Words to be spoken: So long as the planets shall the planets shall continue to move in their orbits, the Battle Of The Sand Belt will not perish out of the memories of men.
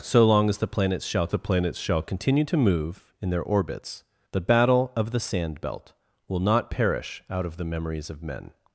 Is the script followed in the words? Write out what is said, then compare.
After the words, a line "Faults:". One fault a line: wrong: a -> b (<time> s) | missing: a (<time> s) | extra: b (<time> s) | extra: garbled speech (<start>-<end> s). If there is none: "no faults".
So long as the planets shall the planets shall continue to move in their orbits, the Battle Of The Sand Belt will not perish out of the memories of men.
Faults:
no faults